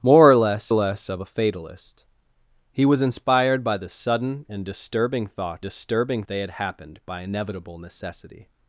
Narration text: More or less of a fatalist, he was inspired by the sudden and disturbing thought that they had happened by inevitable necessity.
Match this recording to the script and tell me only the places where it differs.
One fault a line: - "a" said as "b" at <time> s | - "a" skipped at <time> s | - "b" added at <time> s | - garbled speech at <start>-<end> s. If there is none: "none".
- "less" added at 0.7 s
- "that" said as "disturbing" at 5.6 s